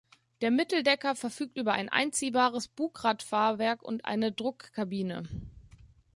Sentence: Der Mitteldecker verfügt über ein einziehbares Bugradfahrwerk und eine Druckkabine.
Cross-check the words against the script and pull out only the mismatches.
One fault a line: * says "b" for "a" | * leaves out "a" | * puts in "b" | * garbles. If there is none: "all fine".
all fine